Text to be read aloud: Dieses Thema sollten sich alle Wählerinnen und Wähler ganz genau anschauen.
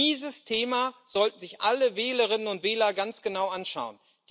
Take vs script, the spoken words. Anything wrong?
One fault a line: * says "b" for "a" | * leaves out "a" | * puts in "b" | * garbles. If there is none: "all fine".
all fine